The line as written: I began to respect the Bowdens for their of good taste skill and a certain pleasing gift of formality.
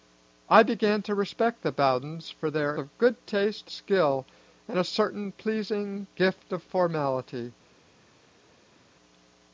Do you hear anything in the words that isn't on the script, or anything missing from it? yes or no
no